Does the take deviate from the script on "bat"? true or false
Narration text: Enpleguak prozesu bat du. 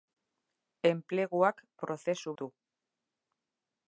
true